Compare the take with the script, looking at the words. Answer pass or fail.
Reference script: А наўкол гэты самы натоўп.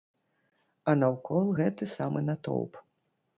pass